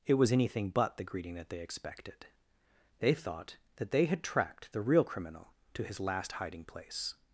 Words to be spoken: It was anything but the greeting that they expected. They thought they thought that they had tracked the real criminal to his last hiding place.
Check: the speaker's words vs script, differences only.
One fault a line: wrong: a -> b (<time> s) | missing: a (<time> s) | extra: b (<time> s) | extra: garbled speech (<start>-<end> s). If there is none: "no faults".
missing: they thought (3.6 s)